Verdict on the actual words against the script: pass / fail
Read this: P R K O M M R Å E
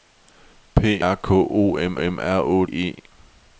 pass